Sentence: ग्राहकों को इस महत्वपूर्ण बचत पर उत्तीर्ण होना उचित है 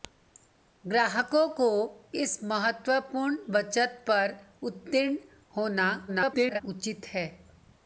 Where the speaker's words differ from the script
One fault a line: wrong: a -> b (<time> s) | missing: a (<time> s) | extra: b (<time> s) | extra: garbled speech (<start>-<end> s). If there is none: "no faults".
extra: garbled speech (6.1-6.6 s)